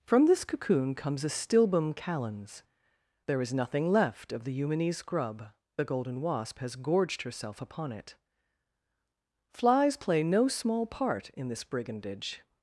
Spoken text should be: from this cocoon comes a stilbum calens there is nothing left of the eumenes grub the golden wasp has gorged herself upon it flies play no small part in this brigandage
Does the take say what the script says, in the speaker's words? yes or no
yes